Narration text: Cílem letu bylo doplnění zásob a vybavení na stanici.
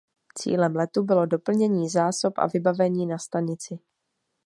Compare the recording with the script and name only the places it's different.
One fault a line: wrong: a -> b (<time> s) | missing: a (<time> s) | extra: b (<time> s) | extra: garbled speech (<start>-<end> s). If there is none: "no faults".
no faults